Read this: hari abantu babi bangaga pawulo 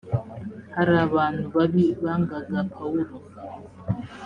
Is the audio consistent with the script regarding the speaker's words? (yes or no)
yes